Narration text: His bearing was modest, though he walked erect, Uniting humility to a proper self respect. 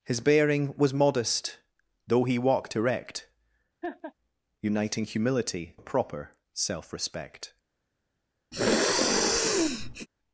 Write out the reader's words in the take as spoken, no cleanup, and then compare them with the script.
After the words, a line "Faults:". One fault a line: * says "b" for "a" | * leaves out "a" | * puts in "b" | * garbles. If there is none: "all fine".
His bearing was modest, though he walked erect, Uniting humility a proper self respect.
Faults:
* leaves out "to"